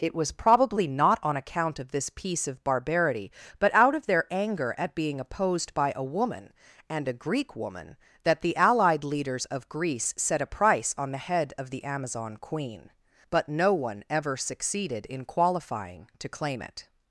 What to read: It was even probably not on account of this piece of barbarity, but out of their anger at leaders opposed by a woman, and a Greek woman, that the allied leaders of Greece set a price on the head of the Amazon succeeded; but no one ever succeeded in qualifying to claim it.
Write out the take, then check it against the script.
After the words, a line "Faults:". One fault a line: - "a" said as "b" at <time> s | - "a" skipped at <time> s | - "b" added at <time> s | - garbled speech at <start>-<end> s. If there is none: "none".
It was probably not on account of this piece of barbarity, but out of their anger at being opposed by a woman, and a Greek woman, that the allied leaders of Greece set a price on the head of the Amazon queen; but no one ever succeeded in qualifying to claim it.
Faults:
- "even" skipped at 0.3 s
- "leaders" said as "being" at 5.0 s
- "succeeded" said as "queen" at 12.4 s